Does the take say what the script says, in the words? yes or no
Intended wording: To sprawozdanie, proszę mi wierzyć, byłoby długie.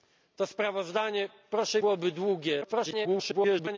no